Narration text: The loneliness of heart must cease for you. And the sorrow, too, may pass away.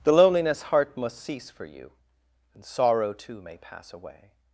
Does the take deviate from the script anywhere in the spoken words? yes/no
yes